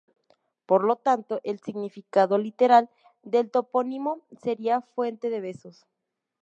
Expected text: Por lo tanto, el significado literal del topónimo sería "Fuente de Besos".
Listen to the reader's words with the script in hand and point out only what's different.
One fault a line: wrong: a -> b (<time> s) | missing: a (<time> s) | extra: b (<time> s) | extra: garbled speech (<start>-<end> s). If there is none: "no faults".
no faults